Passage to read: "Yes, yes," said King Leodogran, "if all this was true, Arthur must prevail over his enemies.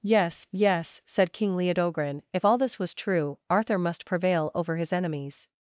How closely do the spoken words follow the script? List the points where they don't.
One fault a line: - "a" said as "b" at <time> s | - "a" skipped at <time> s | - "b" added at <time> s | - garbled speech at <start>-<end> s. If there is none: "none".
none